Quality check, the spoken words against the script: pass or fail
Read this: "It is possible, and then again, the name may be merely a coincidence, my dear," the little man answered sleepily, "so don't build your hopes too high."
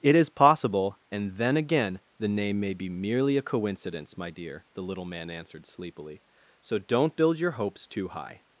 pass